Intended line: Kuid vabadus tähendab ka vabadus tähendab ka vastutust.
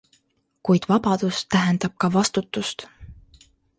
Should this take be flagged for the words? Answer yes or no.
yes